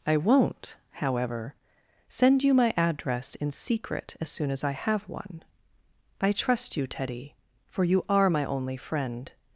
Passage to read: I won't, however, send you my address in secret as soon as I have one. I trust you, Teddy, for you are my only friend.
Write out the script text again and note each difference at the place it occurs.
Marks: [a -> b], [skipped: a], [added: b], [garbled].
I won't, however, send you my address in secret as soon as I have one. I trust you, Teddy, for you are my only friend.